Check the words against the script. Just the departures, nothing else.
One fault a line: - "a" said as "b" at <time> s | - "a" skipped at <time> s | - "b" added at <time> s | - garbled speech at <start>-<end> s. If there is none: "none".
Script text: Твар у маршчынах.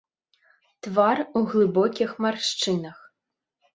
- "глыбокіх" added at 1.5 s